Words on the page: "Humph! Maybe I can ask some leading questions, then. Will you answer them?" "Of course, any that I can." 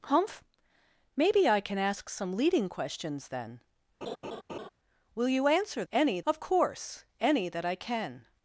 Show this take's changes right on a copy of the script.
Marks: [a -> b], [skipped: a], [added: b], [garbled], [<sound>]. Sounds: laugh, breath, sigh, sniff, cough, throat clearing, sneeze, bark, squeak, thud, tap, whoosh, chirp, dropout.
"Humph! Maybe I can ask some leading questions, then. [laugh] Will you answer [them?" -> any] "Of course, any that I can."